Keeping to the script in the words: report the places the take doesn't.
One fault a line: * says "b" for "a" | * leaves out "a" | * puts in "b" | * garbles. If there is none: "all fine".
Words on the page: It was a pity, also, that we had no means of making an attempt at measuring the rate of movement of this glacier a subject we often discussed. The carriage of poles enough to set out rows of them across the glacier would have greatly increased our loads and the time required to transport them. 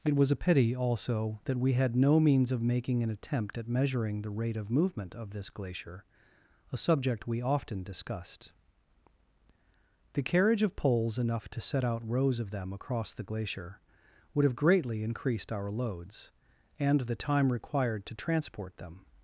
all fine